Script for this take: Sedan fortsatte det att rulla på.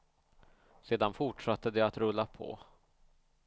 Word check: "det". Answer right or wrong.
right